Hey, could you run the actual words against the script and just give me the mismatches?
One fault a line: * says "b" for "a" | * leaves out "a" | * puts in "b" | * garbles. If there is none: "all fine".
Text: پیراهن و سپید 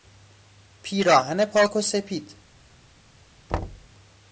* puts in "پاک"